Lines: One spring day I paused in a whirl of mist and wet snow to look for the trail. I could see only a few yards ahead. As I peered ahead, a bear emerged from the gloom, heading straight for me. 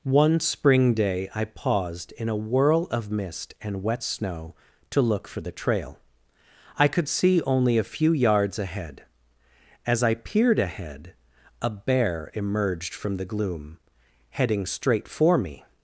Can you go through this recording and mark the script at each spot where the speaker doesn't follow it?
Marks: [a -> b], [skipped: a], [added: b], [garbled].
One spring day I paused in a whirl of mist and wet snow to look for the trail. I could see only a few yards ahead. As I peered ahead, a bear emerged from the gloom, heading straight for me.